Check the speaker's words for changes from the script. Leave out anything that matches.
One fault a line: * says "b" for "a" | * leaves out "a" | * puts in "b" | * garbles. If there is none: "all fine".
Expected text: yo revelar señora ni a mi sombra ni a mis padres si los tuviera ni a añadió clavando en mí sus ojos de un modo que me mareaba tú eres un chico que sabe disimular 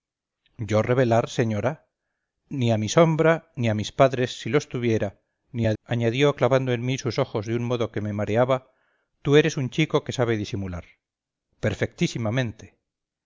all fine